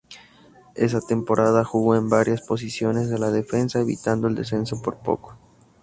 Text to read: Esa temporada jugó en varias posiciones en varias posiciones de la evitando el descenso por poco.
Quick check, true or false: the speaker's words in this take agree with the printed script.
false